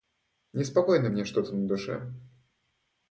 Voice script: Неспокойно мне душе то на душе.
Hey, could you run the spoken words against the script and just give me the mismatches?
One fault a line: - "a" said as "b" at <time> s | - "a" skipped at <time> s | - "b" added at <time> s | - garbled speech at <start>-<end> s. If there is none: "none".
- "душе" said as "что" at 1.2 s